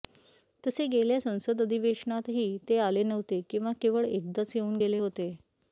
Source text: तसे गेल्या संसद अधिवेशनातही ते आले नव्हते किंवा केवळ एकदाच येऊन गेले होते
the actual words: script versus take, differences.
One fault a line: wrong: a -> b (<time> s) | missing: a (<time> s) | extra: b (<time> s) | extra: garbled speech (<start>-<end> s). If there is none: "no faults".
no faults